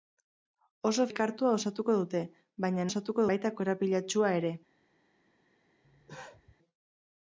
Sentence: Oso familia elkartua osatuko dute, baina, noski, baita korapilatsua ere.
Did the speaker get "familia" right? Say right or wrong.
wrong